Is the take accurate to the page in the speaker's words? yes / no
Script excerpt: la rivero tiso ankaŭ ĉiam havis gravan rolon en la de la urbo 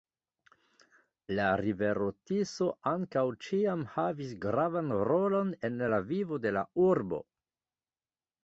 no